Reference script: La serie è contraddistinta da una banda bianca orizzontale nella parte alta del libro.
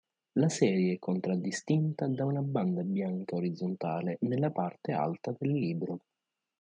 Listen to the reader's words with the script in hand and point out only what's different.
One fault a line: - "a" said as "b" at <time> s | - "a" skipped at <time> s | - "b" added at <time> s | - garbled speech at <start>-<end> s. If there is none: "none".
none